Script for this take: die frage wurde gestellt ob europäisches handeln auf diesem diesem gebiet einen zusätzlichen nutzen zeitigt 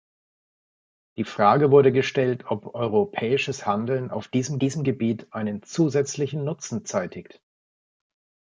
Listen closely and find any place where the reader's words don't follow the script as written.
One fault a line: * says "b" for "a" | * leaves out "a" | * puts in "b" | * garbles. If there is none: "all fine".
all fine